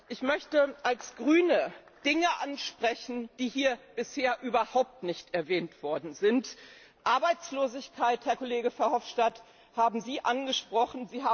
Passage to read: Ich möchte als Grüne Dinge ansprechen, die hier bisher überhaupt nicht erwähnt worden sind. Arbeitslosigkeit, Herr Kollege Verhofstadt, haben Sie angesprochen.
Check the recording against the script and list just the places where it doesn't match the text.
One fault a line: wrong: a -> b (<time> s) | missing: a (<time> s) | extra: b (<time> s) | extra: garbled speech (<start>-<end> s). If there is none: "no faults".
no faults